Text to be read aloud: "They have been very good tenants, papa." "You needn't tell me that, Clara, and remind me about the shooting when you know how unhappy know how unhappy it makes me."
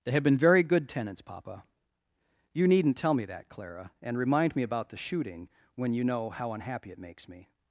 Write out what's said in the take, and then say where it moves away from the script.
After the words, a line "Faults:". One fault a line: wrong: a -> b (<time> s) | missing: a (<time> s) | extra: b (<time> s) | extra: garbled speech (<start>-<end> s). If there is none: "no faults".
"They have been very good tenants, papa." "You needn't tell me that, Clara, and remind me about the shooting when you know how unhappy it makes me."
Faults:
missing: know how unhappy (6.9 s)